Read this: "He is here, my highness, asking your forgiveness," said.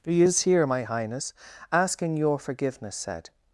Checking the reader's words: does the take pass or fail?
pass